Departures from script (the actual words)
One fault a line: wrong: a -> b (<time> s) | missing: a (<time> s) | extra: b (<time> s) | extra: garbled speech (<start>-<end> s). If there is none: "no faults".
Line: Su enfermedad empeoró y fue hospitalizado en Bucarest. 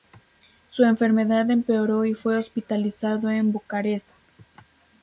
no faults